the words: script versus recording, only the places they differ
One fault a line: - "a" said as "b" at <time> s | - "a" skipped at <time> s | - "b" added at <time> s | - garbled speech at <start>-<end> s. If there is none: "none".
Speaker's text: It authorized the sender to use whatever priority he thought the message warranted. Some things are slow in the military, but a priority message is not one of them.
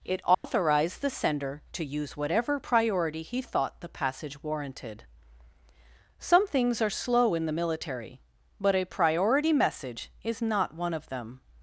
- "message" said as "passage" at 3.9 s